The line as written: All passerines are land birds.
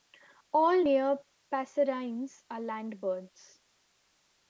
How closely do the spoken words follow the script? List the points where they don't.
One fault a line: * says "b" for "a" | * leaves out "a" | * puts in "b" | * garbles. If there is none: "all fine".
* puts in "near"